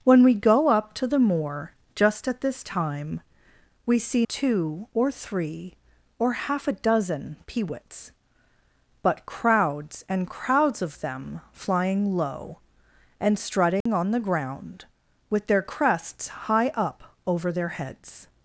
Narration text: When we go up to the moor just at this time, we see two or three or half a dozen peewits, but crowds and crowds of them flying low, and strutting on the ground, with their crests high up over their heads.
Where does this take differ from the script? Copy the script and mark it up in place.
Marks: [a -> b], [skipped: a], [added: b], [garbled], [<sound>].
When we go up to the moor just at this time, we see two or three or half a dozen peewits, but crowds and crowds of them flying low, and strutting [dropout] on the ground, with their crests high up over their heads.